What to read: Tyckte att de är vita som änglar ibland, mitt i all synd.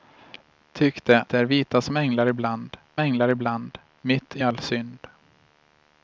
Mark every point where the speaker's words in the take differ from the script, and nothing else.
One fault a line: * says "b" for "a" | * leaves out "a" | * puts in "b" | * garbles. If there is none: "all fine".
* leaves out "att"
* puts in "änglar ibland"